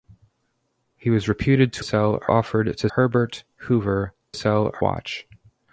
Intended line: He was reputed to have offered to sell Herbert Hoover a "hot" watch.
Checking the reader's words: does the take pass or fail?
fail